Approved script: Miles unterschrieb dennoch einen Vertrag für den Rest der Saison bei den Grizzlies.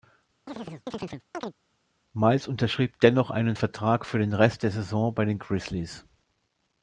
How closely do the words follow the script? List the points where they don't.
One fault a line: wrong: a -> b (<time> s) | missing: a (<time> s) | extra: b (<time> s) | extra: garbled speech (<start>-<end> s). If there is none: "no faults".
no faults